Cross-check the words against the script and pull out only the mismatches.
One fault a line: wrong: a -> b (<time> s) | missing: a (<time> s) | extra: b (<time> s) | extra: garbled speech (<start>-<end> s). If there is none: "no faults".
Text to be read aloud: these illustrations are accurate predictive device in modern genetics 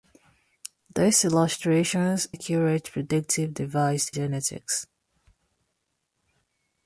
missing: are (2.3 s)
missing: in modern (4.1 s)